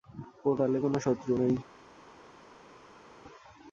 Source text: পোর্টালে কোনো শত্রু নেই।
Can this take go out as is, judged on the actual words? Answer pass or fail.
pass